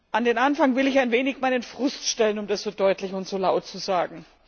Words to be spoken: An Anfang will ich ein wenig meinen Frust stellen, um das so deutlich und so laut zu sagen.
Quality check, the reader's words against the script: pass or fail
fail